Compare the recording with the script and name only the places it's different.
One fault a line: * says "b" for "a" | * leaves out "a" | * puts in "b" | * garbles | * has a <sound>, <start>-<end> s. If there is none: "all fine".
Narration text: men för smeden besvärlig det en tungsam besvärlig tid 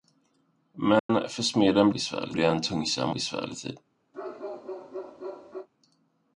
* has a dropout, 1.0-1.1 s
* has a bark, 4.1-5.7 s